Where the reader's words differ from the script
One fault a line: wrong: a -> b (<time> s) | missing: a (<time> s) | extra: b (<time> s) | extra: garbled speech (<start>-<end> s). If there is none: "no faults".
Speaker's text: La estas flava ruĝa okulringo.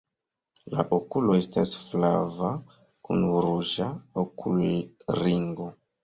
extra: okulo (1.0 s)
extra: kun (3.1 s)